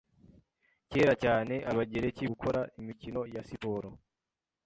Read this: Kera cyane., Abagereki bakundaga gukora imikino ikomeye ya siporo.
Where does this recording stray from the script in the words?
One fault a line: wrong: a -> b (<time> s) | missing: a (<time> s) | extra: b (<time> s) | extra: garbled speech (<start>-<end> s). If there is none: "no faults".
missing: bakundaga (2.2 s)
missing: ikomeye (3.2 s)